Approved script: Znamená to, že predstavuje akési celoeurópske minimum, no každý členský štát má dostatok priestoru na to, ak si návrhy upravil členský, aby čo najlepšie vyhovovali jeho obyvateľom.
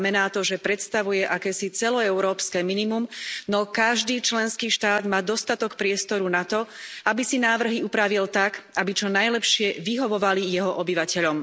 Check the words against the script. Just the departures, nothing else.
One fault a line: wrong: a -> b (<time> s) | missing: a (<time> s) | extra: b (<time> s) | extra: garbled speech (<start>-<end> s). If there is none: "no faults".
wrong: ak -> aby (7.0 s)
wrong: členský -> tak (8.3 s)